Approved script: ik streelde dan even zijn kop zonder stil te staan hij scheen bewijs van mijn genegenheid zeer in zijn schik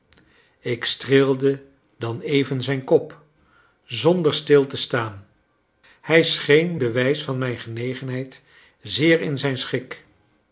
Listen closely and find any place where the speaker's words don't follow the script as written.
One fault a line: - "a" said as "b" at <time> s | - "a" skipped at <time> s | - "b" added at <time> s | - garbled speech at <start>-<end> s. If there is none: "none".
none